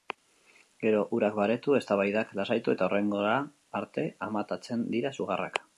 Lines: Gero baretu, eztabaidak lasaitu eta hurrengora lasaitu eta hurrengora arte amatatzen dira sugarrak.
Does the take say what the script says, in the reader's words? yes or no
no